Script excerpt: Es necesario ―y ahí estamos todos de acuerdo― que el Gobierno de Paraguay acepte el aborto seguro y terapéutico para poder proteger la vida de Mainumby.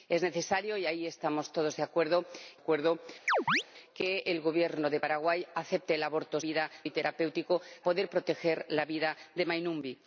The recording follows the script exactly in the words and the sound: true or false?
false